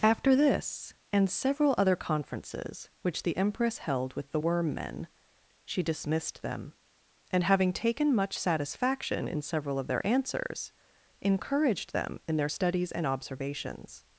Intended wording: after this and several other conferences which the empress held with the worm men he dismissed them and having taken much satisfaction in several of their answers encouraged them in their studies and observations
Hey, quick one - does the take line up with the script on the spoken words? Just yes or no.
no